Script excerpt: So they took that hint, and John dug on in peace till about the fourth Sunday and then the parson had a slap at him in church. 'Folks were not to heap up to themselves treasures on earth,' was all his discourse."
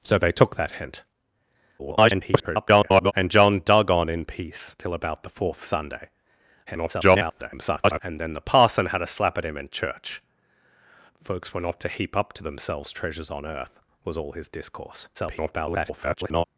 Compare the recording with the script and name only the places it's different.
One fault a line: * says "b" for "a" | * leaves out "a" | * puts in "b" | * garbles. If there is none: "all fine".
* garbles
* garbles
* garbles